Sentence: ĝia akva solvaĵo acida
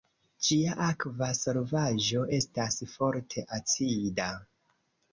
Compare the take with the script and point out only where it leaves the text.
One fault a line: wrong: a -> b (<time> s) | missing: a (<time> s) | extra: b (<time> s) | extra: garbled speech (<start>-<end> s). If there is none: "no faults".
extra: estas forte (2.4 s)